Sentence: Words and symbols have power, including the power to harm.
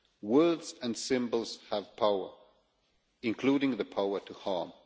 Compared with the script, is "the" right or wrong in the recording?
right